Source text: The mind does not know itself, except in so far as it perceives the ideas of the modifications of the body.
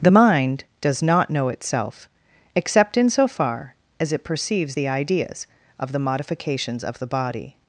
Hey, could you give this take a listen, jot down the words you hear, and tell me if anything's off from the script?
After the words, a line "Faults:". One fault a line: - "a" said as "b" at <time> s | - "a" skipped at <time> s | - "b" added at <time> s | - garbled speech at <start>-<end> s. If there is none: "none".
The mind does not know itself, except in so far as it perceives the ideas of the modifications of the body.
Faults:
none